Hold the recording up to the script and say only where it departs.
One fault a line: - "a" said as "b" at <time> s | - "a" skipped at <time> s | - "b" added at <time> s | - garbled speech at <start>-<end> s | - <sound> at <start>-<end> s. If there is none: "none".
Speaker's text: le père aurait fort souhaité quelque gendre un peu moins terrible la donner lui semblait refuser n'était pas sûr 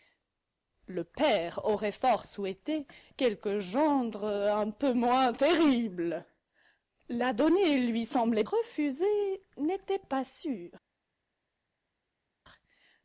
none